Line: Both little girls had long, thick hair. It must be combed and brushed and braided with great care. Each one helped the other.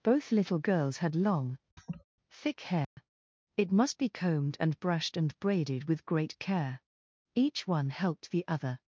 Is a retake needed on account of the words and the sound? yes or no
yes